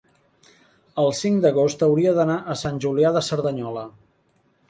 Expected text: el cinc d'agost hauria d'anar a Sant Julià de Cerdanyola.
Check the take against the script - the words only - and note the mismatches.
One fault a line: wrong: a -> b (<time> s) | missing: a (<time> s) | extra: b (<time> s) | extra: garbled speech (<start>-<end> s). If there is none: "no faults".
no faults